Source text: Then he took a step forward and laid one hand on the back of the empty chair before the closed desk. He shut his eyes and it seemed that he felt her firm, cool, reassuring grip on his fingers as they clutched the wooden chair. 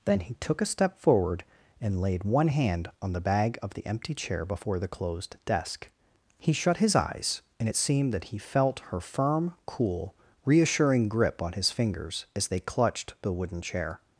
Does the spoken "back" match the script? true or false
false